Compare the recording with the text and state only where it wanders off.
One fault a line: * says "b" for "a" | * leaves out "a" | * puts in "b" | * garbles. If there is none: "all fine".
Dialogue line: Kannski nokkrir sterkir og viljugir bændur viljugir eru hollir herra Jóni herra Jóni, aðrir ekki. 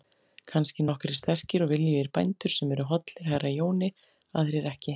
* says "sem" for "viljugir"
* leaves out "herra Jóni"